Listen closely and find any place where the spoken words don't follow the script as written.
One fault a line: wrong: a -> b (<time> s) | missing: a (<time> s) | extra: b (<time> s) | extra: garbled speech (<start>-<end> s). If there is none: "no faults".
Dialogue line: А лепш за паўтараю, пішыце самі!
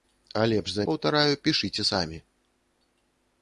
no faults